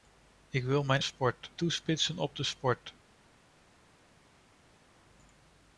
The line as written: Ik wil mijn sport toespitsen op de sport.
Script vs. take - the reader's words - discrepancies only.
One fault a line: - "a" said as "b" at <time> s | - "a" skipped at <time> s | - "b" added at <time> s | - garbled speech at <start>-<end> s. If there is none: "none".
none